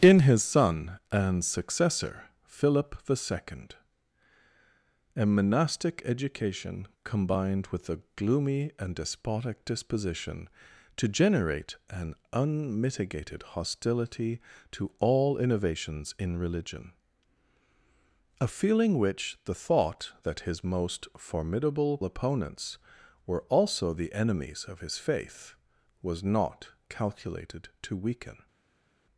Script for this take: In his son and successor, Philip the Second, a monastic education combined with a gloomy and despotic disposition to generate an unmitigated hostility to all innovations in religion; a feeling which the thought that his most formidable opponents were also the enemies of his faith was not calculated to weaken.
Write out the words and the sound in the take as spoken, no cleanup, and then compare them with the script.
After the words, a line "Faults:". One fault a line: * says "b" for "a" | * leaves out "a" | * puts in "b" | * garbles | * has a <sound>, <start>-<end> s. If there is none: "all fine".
In his son and successor, Philip the Second, a monastic education combined with a gloomy and despotic disposition to generate an unmitigated hostility to all innovations in religion; a feeling which the thought that his most formidable opponents were also the enemies of his faith was not calculated to weaken.
Faults:
all fine